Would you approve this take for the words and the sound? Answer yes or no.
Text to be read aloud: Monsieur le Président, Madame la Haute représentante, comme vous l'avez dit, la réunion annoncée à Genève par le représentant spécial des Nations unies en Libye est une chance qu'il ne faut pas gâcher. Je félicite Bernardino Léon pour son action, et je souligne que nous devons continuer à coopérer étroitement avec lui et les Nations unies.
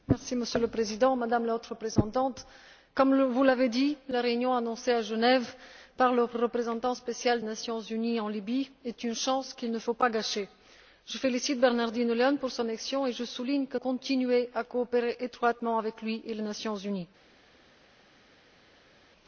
no